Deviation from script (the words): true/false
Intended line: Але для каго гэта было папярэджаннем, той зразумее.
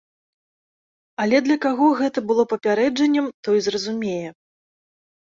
false